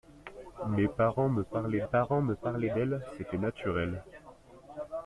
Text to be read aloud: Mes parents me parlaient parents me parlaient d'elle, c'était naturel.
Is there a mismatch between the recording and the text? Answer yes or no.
no